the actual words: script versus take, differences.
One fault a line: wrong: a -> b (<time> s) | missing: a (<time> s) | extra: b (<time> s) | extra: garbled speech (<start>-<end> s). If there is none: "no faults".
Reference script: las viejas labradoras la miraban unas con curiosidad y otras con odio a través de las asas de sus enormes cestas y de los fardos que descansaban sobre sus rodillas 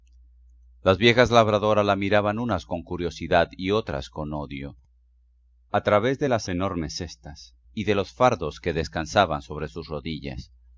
missing: asas de sus (6.5 s)